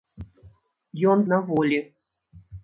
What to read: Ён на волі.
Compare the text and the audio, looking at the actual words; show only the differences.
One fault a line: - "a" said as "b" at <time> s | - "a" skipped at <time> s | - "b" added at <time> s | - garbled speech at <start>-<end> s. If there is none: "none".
none